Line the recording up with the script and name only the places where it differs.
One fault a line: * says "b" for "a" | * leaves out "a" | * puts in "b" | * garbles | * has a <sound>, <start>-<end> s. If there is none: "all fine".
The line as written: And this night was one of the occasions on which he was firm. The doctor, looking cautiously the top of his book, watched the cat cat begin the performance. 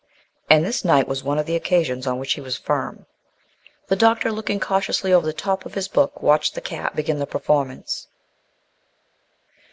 * puts in "over"
* leaves out "cat"